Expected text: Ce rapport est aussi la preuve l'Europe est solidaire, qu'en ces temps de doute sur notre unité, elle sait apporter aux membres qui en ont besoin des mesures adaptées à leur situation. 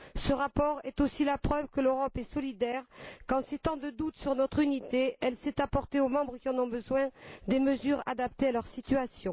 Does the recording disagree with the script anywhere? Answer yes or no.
yes